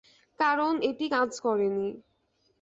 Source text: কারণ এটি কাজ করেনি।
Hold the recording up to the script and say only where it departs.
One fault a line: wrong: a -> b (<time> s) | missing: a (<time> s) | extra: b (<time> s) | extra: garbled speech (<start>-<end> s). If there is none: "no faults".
no faults